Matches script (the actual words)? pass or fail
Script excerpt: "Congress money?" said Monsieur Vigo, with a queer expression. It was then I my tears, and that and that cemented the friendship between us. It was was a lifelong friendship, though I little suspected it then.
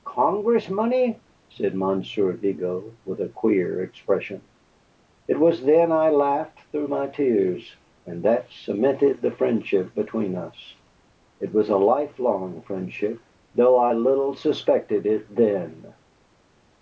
fail